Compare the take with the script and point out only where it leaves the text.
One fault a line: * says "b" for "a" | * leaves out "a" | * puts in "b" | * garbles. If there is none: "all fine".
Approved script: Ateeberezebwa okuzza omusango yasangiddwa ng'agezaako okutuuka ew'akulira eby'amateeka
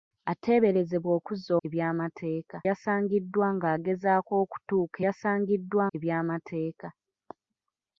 * says "eby'amateeka" for "omusango"
* says "yasangiddwa" for "ew'akulira"